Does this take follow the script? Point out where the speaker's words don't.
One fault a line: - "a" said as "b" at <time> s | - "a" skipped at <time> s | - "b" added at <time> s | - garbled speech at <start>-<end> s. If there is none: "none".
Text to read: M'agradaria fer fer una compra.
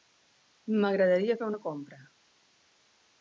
- "fer" skipped at 1.5 s